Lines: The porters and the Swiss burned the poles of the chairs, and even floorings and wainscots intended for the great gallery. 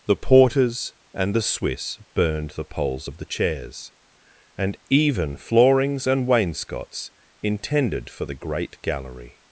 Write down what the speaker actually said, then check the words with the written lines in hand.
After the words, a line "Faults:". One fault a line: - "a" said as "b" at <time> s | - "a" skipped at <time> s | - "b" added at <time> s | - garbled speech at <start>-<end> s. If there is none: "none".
The porters and the Swiss burned the poles of the chairs, and even floorings and wainscots intended for the great gallery.
Faults:
none